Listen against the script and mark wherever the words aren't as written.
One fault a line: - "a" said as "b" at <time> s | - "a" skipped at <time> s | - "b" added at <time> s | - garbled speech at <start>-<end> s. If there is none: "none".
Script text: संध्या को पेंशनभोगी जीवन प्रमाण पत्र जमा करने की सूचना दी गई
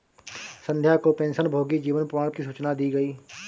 - "पत्र जमा करने" skipped at 2.3 s